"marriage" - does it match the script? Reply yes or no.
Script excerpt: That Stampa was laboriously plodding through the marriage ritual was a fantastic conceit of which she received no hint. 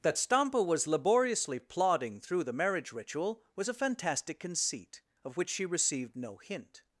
yes